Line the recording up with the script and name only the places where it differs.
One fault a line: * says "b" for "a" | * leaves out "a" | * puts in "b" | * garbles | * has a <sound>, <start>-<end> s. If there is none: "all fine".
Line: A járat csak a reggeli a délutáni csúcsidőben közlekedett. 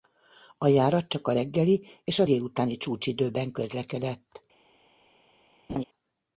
* puts in "és"
* has a laugh, 5.7-5.8 s